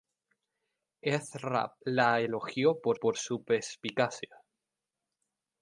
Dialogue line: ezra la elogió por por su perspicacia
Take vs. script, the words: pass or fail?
pass